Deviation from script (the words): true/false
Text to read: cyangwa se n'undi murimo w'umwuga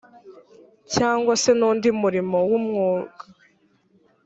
false